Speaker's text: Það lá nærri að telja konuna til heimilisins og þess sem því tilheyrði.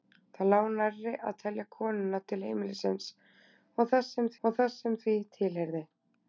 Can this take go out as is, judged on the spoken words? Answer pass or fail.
fail